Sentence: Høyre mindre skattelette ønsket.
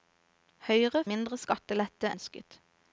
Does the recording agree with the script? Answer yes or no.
yes